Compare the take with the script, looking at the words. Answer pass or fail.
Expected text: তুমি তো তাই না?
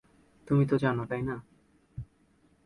fail